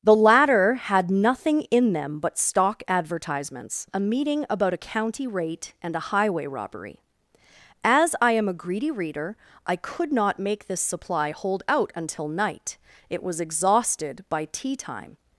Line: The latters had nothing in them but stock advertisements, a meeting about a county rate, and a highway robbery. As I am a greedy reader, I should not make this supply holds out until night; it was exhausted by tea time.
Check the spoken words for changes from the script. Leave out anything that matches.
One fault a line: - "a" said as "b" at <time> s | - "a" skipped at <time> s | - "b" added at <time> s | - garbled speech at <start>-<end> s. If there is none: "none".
- "latters" said as "latter" at 0.1 s
- "should" said as "could" at 9.8 s
- "holds" said as "hold" at 11.3 s